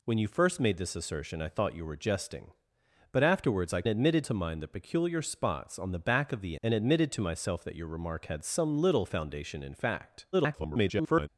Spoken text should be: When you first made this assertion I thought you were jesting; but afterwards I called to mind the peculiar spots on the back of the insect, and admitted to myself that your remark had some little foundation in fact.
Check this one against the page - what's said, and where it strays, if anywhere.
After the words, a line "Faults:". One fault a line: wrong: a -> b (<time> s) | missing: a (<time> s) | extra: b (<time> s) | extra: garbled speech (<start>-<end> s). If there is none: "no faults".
When you first made this assertion I thought you were jesting; but afterwards I admitted to mind the peculiar spots on the back of the and admitted to myself that your remark had some little foundation in fact. [garbled]
Faults:
wrong: called -> admitted (3.9 s)
missing: insect (6.6 s)
extra: garbled speech (10.3-11.3 s)